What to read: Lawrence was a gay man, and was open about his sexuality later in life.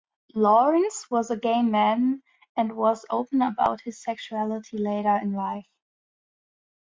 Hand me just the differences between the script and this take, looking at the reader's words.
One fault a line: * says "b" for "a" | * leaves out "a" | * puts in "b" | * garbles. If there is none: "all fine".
all fine